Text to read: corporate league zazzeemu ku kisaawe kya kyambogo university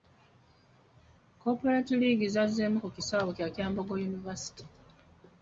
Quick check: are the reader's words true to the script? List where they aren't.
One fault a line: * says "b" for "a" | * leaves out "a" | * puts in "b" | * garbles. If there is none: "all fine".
all fine